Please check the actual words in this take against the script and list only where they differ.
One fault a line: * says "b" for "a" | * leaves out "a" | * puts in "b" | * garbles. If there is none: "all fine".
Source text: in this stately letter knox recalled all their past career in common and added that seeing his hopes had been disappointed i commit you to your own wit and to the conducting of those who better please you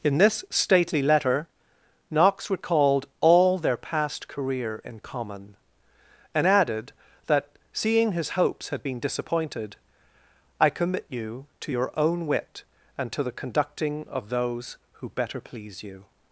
all fine